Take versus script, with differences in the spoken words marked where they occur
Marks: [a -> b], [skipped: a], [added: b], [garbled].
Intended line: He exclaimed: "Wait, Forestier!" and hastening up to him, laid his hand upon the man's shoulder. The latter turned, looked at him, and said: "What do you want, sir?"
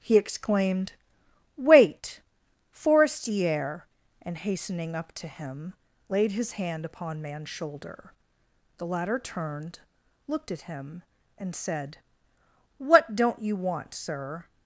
He exclaimed: "Wait, Forestier!" and hastening up to him, laid his hand upon [skipped: the] man's shoulder. The latter turned, looked at him, and said: "What [do -> don't] you want, sir?"